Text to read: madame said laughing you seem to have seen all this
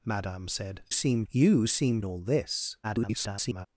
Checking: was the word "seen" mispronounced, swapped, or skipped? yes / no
yes